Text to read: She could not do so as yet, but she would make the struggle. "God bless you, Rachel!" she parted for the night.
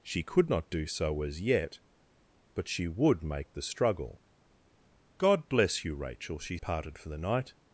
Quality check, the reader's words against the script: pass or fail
pass